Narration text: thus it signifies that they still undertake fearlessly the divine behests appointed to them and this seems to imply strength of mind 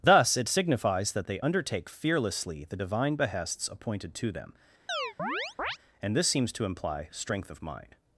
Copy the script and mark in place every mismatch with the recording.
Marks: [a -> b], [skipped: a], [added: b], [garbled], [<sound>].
thus it signifies that they [skipped: still] undertake fearlessly the divine behests appointed to them [chirp] and this seems to imply strength of mind